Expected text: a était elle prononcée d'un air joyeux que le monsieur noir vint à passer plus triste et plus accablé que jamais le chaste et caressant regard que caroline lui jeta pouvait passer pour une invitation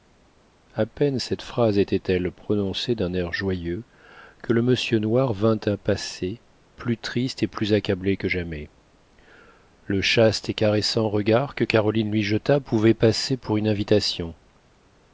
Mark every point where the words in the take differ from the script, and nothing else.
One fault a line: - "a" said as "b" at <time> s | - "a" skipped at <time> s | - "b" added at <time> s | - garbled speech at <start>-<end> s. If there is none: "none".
- "peine cette phrase" added at 0.9 s